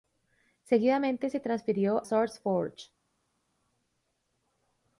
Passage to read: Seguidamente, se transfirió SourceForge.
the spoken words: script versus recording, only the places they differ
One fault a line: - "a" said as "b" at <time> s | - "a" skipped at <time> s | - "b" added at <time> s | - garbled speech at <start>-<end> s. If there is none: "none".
none